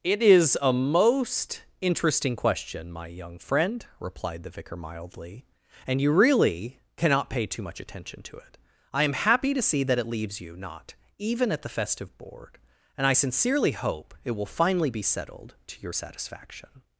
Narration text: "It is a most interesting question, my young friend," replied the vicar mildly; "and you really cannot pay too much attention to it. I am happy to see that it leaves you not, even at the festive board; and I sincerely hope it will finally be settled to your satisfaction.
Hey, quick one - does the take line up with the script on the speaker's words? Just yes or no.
yes